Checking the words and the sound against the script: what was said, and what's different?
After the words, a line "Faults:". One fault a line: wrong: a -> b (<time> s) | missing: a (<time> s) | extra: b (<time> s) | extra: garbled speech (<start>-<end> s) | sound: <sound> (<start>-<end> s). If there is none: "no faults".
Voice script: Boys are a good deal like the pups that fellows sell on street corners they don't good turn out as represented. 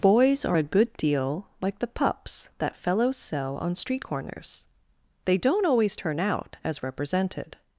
Boys are a good deal like the pups that fellows sell on street corners they don't always turn out as represented.
Faults:
wrong: good -> always (5.6 s)